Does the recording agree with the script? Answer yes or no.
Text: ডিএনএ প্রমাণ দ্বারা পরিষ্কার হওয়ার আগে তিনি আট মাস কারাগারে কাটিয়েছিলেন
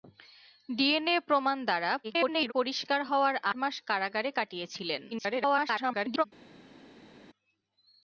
no